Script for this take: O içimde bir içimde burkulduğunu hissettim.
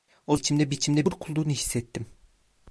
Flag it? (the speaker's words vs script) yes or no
no